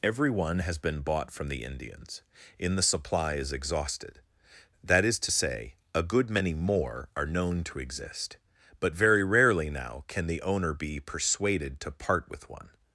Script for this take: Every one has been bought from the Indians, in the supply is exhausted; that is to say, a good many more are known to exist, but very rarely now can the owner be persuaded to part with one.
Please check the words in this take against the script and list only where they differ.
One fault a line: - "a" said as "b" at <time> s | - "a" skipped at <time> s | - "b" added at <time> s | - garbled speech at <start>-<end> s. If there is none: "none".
none